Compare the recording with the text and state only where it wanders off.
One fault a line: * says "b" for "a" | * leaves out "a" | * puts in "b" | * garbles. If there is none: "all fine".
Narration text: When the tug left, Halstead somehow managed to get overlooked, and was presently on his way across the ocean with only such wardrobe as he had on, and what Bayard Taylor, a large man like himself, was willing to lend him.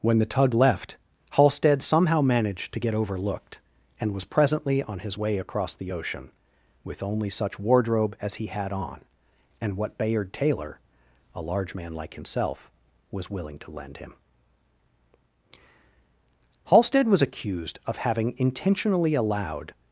* puts in "Halstead was accused of having intentionally allowed"